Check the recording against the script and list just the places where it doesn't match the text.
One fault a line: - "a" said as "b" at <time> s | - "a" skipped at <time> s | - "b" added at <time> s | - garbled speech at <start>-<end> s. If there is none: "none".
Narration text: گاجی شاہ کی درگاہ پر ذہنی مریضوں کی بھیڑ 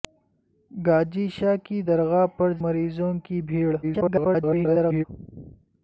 - "ذہنی" skipped at 2.5 s
- garbled speech at 3.8-5.0 s